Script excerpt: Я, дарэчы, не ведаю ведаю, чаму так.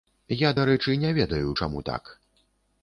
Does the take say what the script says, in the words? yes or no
no